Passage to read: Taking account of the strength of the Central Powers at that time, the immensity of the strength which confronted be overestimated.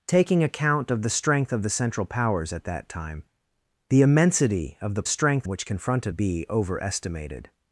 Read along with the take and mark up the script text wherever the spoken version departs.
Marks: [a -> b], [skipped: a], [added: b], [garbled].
Taking account of the strength of the Central Powers at that time, the immensity of the strength which confronted be overestimated.